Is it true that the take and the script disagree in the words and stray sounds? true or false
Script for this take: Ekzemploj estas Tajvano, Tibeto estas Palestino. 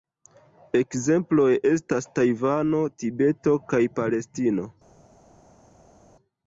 true